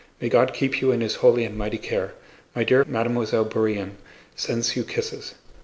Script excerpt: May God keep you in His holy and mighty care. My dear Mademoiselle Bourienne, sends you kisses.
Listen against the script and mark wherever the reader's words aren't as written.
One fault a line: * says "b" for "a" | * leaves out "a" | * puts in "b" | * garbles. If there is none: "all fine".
all fine